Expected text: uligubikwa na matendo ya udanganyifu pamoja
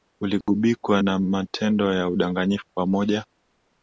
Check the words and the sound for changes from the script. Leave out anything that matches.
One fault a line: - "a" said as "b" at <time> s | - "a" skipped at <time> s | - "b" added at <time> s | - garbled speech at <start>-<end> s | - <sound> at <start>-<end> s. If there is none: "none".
- dropout at 0.4-0.5 s